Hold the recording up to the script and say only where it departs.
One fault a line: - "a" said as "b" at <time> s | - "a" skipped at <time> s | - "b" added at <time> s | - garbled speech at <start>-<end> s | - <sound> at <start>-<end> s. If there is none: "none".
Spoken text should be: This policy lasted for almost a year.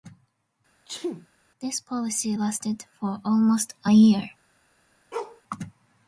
- sneeze at 0.9-1.3 s
- bark at 5.1-5.4 s